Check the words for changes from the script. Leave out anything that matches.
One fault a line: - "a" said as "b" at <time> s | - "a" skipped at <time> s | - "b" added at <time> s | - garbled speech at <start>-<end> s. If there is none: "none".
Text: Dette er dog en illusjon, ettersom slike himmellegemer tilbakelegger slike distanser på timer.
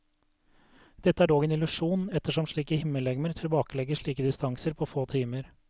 - "få" added at 4.9 s